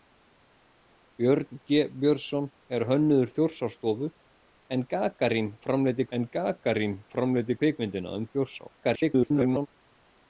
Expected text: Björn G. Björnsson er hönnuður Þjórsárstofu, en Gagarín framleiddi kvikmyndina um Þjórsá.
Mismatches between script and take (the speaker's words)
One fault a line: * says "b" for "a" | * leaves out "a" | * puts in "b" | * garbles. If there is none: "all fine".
* puts in "en Gagarín framleiddi"
* garbles